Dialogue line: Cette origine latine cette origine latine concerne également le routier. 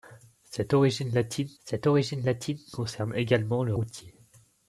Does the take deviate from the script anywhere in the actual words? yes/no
no